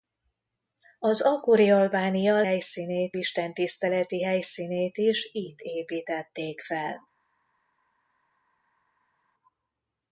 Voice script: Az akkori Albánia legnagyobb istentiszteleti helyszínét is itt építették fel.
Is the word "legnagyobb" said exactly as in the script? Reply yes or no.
no